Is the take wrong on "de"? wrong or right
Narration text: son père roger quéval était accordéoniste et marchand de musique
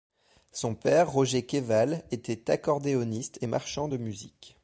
right